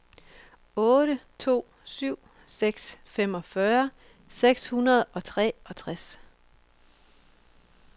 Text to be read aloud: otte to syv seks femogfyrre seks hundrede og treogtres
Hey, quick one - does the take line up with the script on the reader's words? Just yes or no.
yes